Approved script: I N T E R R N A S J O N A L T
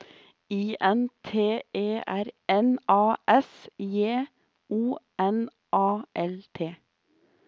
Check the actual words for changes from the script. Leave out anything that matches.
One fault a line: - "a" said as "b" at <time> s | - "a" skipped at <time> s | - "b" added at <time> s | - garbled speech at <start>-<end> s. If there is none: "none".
- "R" skipped at 2.2 s